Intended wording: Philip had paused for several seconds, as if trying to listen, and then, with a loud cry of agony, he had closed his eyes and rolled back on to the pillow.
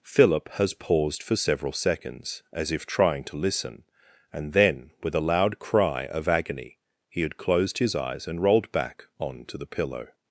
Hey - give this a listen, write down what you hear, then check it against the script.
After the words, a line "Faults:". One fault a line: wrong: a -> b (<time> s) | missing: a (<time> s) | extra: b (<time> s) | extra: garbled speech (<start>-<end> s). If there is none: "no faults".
Philip has paused for several seconds, as if trying to listen, and then, with a loud cry of agony, he had closed his eyes and rolled back on to the pillow.
Faults:
wrong: had -> has (0.5 s)